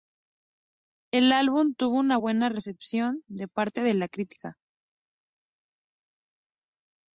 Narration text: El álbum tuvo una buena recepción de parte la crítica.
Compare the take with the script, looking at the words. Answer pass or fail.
fail